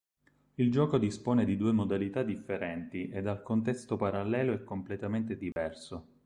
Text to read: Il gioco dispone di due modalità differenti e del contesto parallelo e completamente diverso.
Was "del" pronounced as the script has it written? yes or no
no